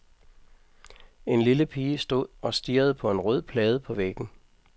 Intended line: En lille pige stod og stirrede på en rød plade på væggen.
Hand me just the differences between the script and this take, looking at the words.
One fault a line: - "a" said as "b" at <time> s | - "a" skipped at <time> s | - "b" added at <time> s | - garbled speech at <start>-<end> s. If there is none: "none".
none